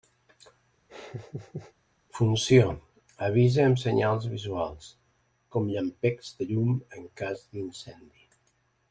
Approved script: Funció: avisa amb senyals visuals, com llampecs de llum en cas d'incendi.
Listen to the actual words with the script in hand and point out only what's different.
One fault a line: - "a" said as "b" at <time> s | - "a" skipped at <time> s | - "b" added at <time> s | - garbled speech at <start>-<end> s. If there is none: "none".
none